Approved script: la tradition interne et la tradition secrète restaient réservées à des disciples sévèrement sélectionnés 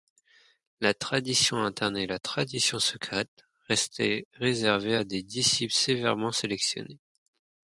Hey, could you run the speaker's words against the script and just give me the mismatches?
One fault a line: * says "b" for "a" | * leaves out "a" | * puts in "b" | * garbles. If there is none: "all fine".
all fine